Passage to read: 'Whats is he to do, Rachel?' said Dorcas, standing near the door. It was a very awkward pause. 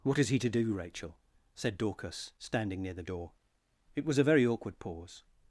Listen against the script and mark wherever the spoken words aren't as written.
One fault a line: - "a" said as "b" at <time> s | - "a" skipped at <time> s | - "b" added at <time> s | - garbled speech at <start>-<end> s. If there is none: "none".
- "Whats" said as "What" at 0.0 s